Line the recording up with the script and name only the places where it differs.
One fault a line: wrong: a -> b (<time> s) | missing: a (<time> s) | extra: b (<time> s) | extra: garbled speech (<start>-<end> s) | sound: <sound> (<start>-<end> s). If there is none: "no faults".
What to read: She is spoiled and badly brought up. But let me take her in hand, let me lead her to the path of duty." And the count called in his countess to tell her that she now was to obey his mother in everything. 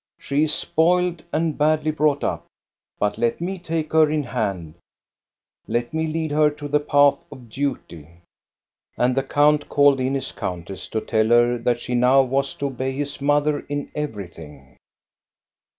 no faults